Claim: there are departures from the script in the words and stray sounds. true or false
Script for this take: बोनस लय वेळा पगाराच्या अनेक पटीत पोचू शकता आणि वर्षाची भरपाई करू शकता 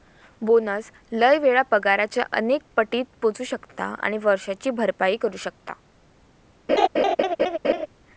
true